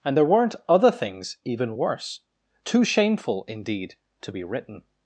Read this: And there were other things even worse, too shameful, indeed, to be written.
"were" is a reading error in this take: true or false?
true